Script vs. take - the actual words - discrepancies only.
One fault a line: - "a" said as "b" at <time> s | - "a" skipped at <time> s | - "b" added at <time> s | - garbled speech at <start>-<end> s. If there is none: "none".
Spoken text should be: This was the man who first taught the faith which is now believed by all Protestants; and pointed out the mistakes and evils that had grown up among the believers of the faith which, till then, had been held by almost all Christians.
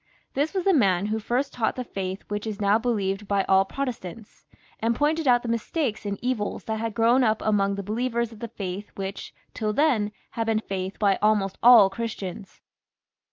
- "held" said as "faith" at 10.6 s